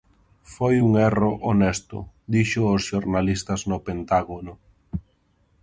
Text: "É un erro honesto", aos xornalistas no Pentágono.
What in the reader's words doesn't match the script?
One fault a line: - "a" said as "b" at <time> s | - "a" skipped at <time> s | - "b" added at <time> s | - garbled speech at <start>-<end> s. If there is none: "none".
- "É" said as "Foi" at 0.5 s
- "dixo" added at 2.3 s